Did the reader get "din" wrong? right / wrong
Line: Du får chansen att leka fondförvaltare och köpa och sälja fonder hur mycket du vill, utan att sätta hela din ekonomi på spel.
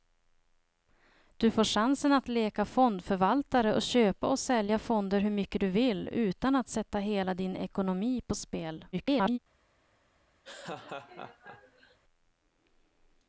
right